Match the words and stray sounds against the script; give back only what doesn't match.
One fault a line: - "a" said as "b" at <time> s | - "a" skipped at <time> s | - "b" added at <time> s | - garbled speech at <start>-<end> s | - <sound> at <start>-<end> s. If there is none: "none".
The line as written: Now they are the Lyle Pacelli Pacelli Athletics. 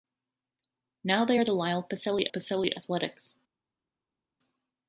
none